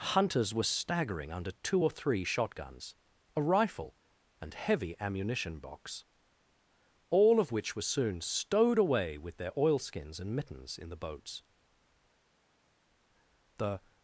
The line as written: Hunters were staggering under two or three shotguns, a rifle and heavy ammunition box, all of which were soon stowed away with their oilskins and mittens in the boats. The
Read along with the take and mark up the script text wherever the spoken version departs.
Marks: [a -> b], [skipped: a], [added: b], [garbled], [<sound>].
Hunters were staggering under two or three shotguns, a rifle and heavy ammunition box, all of which were soon stowed away with their oilskins and mittens in the boats. The